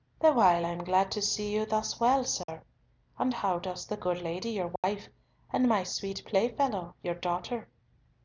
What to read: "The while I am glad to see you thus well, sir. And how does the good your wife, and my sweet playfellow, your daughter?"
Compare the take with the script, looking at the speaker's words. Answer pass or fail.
fail